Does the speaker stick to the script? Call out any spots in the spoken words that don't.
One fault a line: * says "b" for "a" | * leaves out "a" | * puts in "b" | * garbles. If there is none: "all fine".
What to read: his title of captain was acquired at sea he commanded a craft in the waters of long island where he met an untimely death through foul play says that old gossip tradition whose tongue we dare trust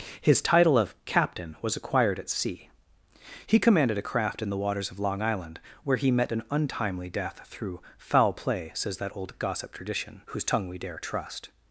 all fine